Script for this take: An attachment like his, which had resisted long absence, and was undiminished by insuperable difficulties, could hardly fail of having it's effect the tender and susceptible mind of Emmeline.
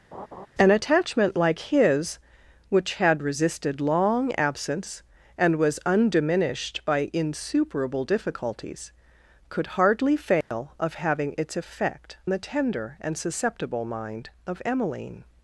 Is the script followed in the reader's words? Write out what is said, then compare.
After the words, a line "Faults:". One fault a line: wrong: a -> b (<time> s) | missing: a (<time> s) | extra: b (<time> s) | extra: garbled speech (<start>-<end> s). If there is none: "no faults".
An attachment like his, which had resisted long absence, and was undiminished by insuperable difficulties, could hardly fail of having it's effect the tender and susceptible mind of Emmeline.
Faults:
no faults